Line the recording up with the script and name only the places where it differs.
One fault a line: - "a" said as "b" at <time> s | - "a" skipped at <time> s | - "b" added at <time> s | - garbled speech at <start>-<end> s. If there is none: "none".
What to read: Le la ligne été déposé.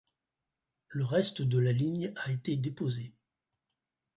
- "reste de" added at 1.1 s
- "a" added at 2.1 s